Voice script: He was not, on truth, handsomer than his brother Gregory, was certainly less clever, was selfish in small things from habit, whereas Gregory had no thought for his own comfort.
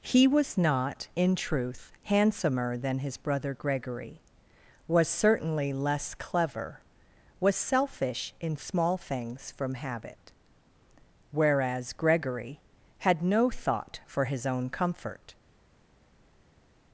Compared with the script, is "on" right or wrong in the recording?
wrong